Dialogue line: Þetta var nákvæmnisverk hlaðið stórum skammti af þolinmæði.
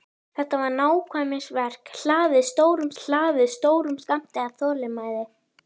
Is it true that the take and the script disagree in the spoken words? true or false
true